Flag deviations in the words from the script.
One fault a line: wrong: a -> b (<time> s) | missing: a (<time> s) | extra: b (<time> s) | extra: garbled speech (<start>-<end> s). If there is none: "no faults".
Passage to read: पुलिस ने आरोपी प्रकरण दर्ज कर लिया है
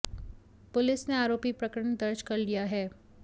no faults